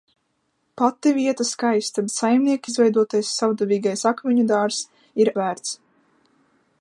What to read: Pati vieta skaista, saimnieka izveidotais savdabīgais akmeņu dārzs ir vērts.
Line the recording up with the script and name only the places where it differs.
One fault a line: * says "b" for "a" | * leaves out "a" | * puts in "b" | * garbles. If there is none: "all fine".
all fine